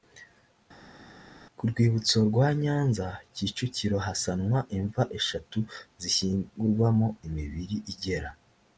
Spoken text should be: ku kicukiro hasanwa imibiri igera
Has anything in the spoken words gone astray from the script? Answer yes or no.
yes